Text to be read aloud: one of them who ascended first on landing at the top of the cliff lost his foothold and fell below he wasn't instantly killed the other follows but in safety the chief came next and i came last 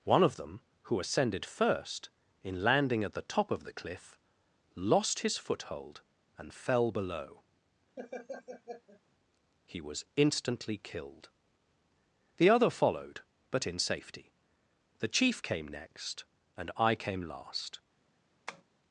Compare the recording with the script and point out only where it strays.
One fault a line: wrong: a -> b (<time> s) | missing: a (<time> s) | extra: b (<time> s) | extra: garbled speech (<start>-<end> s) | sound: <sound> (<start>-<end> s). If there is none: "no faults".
wrong: on -> in (2.4 s)
sound: laugh (8.0-9.0 s)
wrong: wasn't -> was (9.8 s)
wrong: follows -> followed (12.7 s)
sound: tap (18.5-18.6 s)